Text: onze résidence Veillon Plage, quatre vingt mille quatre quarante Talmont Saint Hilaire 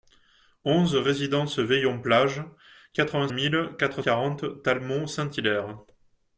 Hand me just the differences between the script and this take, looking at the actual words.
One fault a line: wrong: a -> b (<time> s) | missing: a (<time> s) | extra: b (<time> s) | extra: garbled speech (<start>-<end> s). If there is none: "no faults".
no faults